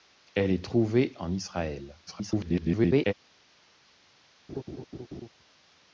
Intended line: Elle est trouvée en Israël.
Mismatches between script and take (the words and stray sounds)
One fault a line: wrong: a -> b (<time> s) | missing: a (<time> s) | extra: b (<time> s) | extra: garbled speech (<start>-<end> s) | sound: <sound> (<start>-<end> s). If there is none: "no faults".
extra: garbled speech (2.1-3.1 s)
sound: laugh (4.5-5.3 s)